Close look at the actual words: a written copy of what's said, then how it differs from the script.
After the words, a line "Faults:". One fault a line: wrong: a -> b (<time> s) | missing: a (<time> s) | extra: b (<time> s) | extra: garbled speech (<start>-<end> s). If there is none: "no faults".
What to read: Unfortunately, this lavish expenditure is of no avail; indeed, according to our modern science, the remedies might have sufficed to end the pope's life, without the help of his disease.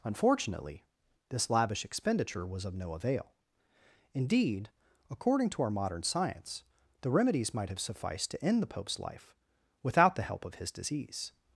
Unfortunately, this lavish expenditure was of no avail; indeed, according to our modern science, the remedies might have sufficed to end the pope's life, without the help of his disease.
Faults:
wrong: is -> was (2.5 s)